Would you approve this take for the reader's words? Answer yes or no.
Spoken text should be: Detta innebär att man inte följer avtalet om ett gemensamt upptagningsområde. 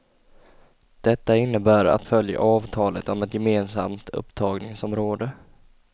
no